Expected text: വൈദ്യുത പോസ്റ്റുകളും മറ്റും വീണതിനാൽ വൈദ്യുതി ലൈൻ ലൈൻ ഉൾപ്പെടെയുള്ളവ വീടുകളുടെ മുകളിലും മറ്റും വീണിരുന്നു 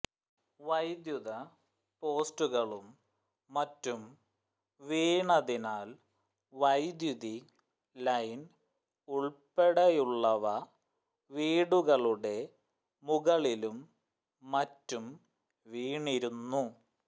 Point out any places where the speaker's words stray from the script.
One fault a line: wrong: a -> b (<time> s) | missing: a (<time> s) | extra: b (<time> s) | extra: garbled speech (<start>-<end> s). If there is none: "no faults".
missing: ലൈൻ (8.4 s)